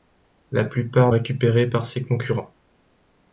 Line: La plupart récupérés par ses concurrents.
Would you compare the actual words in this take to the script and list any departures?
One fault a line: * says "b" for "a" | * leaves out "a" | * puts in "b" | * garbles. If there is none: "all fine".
all fine